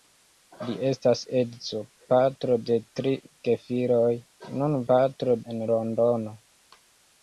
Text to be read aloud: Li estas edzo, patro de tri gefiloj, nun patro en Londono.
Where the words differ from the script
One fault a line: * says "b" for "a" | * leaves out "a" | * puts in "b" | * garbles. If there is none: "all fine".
all fine